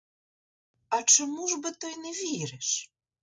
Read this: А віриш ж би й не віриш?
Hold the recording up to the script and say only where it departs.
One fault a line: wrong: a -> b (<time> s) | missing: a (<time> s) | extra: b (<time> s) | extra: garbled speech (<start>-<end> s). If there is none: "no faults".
wrong: віриш -> чому (1.0 s)
extra: то (1.7 s)